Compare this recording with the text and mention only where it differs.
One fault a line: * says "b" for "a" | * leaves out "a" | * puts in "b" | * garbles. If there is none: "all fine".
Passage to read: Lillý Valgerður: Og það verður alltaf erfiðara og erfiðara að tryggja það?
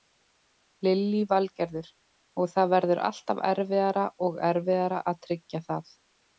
all fine